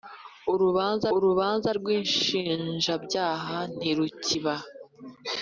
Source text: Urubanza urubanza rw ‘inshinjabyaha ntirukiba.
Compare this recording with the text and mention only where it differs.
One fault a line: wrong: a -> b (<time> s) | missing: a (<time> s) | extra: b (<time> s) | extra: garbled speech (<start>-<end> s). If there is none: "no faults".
no faults